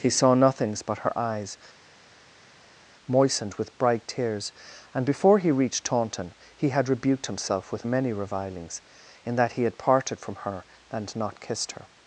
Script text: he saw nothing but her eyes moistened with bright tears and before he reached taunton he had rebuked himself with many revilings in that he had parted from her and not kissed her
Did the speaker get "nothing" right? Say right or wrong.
wrong